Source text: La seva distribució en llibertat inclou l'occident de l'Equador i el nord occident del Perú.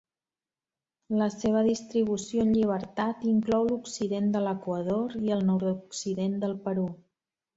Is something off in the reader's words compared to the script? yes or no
no